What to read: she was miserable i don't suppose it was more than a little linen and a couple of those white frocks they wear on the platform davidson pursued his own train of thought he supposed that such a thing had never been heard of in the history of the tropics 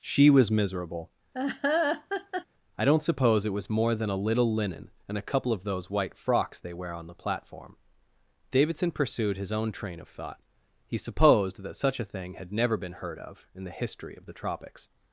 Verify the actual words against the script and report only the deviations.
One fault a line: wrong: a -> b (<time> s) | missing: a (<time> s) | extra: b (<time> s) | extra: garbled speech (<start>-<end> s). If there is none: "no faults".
no faults